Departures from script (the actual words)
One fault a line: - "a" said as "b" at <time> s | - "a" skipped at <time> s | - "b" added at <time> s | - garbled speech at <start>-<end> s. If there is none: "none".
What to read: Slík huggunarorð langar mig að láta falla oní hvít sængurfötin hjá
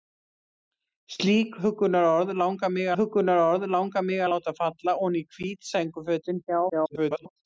- "huggunarorð langar mig" added at 3.0 s
- garbled speech at 6.7-7.3 s